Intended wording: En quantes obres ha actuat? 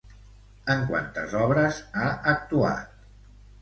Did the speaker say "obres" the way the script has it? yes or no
yes